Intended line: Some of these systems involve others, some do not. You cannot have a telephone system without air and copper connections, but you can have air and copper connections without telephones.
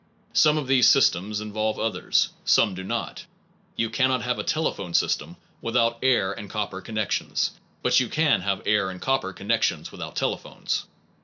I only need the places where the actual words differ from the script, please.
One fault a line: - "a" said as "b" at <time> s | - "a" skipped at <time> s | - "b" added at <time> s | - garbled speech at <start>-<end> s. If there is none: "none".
none